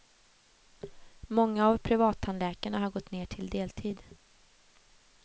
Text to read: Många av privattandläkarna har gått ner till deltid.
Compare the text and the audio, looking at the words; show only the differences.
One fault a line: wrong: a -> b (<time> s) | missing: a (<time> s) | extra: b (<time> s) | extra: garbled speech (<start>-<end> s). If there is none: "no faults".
no faults